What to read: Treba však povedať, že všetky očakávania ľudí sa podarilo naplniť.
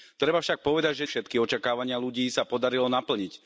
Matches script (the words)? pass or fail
pass